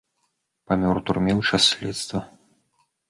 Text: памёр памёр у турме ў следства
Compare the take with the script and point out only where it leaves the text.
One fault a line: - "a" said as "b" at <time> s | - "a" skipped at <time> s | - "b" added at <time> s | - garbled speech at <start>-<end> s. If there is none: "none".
- "памёр" skipped at 0.9 s
- "час" added at 1.5 s